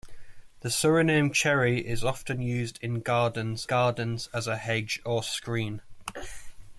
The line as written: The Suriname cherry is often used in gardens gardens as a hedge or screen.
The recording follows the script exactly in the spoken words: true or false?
true